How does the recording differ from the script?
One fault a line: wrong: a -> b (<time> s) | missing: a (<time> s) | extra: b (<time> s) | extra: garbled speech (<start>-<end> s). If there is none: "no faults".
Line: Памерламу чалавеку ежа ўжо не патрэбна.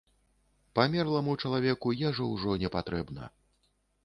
no faults